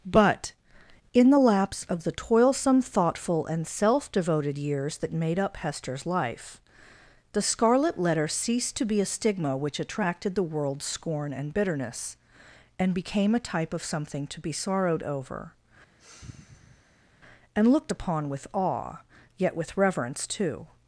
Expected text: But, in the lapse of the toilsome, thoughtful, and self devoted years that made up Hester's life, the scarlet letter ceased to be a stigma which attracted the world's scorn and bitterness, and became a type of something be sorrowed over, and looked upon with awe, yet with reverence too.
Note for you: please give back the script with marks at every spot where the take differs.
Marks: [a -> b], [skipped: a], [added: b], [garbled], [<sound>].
But, in the lapse of the toilsome, thoughtful, and self devoted years that made up Hester's life, the scarlet letter ceased to be a stigma which attracted the world's scorn and bitterness, and became a type of something [added: to] be sorrowed over, [sigh] and looked upon with awe, yet with reverence too.